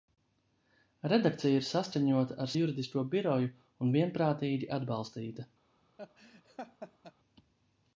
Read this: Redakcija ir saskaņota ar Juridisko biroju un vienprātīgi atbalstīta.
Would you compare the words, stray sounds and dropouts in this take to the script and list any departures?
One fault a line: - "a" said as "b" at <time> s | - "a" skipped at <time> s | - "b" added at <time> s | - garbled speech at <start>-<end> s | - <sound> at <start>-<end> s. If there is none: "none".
- laugh at 6.0-7.1 s